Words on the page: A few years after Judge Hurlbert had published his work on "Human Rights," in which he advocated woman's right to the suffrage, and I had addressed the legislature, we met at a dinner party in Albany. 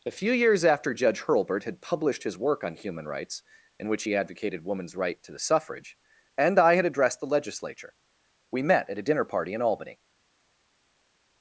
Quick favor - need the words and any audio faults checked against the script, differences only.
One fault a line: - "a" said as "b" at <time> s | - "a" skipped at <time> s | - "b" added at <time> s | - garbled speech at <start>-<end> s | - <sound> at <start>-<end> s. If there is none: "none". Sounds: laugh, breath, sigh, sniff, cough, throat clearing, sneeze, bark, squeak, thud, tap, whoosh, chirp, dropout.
none